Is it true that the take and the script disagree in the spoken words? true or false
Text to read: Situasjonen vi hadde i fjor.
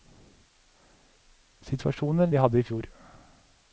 false